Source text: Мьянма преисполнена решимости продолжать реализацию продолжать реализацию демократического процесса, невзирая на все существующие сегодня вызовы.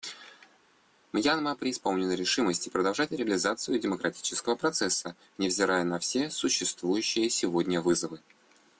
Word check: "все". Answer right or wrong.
right